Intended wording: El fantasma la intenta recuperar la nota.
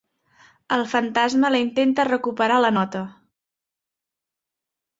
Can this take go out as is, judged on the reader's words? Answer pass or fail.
pass